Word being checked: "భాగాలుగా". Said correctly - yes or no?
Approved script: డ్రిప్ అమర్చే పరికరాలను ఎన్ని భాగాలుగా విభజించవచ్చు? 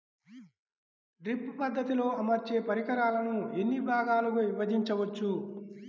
yes